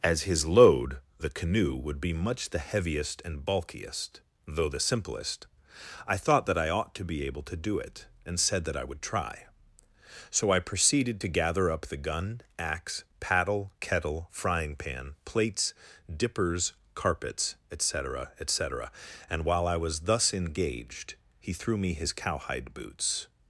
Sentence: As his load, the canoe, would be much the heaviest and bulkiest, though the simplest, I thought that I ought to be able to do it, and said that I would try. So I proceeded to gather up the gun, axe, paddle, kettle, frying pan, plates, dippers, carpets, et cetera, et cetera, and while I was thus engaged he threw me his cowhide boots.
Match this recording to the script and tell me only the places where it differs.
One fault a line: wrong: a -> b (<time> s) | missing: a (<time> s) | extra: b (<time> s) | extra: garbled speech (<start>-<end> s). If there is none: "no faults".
no faults